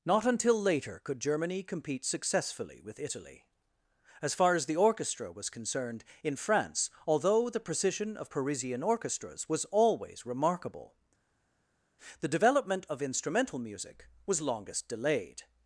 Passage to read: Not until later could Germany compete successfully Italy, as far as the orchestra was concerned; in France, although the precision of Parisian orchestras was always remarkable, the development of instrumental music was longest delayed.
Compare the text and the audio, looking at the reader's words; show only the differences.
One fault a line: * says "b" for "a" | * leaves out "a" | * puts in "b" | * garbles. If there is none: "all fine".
* puts in "with"